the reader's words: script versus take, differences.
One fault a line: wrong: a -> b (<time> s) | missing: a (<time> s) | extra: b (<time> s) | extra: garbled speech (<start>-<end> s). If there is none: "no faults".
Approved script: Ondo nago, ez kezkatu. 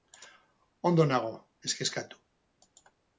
no faults